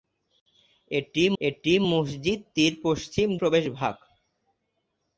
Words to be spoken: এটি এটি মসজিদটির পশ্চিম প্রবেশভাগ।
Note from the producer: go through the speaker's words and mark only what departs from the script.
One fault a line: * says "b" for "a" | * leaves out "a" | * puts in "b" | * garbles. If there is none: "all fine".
all fine